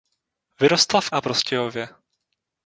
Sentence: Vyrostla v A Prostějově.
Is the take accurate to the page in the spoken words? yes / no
yes